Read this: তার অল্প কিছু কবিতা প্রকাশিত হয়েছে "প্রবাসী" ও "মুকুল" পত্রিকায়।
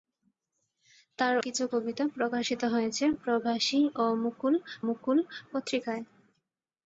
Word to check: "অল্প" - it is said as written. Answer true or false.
false